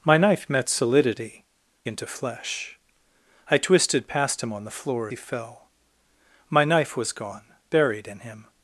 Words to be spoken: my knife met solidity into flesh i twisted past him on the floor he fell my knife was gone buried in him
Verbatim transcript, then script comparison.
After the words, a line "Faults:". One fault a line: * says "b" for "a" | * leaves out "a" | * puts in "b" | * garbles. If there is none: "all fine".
my knife met solidity into flesh i twisted past him on the floor he fell my knife was gone buried in him
Faults:
all fine